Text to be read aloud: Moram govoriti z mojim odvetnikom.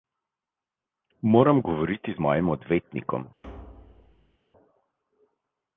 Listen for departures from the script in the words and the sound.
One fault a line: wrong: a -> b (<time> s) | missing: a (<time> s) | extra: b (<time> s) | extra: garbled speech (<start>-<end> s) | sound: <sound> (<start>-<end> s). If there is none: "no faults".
sound: thud (3.4-4.4 s)